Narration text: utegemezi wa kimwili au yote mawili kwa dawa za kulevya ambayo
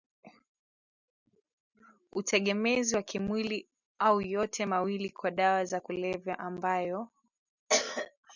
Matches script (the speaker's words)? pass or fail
pass